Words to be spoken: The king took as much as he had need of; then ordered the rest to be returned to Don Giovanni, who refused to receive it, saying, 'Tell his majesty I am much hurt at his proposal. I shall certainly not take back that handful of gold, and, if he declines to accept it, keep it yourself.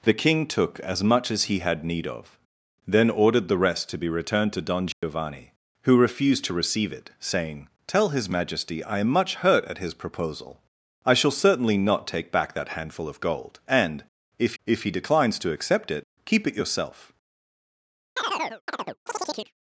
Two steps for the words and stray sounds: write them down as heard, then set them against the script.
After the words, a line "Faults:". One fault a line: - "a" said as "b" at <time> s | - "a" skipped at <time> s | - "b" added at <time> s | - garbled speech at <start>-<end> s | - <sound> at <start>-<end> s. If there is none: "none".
The king took as much as he had need of; then ordered the rest to be returned to Don Giovanni, who refused to receive it, saying, 'Tell his majesty I am much hurt at his proposal. I shall certainly not take back that handful of gold, and, if if he declines to accept it, keep it yourself.
Faults:
- dropout at 4.9-5.0 s
- "if" added at 14.6 s
- chirp at 18.2-19.5 s